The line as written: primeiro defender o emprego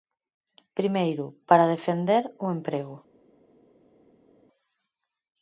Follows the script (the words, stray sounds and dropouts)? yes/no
no